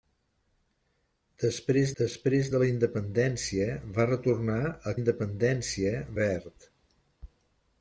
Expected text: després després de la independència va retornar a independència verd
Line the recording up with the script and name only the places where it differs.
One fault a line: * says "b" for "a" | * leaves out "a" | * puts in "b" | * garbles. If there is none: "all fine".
all fine